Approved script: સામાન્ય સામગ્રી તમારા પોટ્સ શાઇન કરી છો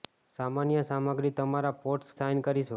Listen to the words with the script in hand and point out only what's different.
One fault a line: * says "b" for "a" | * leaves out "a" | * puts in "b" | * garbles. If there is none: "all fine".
all fine